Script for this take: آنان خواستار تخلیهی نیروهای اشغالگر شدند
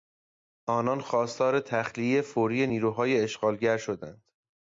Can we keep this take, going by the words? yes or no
no